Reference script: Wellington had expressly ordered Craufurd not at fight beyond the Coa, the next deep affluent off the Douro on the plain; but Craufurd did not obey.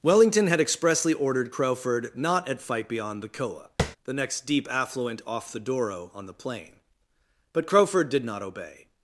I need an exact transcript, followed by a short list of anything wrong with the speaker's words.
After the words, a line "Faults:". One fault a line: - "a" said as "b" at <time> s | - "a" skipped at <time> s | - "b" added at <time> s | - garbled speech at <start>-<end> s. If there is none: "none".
Wellington had expressly ordered Craufurd not at fight beyond the Coa, the next deep affluent off the Douro on the plain; but Craufurd did not obey.
Faults:
none